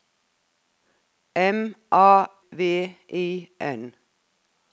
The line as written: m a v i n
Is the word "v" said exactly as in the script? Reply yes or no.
yes